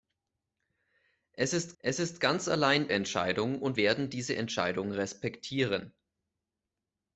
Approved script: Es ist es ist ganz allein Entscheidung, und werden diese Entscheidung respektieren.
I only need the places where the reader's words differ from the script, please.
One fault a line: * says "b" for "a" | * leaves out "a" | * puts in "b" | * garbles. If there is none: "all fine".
all fine